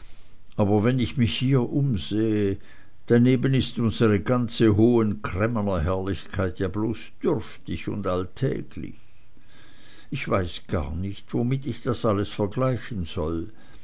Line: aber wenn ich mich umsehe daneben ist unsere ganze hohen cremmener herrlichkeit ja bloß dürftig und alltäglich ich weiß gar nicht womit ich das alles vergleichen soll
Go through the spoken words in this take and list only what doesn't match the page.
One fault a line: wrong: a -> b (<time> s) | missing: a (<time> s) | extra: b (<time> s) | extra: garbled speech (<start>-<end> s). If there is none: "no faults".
extra: hier (1.4 s)